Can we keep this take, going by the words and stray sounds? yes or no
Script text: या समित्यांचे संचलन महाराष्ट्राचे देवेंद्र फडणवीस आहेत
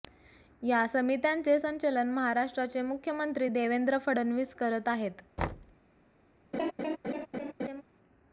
no